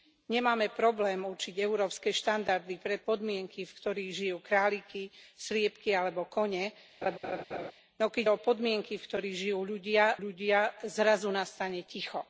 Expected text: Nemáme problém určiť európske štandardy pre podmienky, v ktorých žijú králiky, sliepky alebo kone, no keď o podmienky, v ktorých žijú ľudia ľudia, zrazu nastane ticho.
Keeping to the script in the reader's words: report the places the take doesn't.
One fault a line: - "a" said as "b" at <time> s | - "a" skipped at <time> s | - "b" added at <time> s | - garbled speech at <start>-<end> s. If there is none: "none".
none